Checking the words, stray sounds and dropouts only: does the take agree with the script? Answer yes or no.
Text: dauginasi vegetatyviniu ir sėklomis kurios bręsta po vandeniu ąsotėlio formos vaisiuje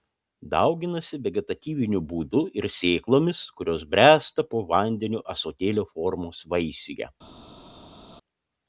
no